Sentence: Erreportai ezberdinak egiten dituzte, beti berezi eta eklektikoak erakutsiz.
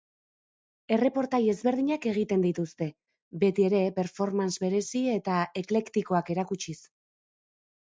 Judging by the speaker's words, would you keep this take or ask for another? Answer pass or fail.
fail